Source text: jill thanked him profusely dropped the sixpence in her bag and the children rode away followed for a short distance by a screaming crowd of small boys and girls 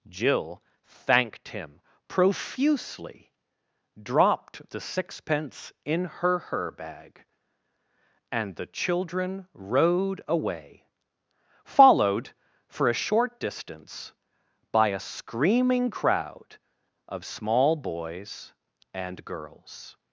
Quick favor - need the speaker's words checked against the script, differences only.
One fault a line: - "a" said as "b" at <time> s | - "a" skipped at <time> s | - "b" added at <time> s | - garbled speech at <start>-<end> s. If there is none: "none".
- "her" added at 6.4 s